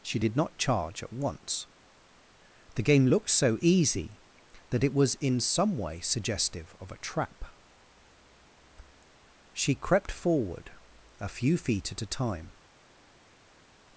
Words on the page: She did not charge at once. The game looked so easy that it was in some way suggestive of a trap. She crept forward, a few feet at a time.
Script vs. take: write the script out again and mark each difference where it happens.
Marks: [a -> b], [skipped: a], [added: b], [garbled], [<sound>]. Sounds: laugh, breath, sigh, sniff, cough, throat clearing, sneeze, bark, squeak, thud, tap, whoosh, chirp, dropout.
She did not charge at once. The game looked so easy that it was in some way suggestive of a trap. She crept forward, a few feet at a time.